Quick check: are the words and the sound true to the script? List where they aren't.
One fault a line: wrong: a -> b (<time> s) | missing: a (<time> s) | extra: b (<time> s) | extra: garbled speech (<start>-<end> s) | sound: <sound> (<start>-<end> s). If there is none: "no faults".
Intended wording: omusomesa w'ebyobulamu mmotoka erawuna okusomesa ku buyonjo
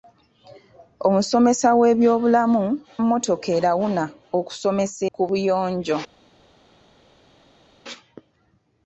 no faults